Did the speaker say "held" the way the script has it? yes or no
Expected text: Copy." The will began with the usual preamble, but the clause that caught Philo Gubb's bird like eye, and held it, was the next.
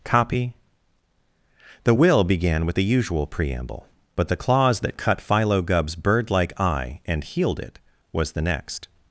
no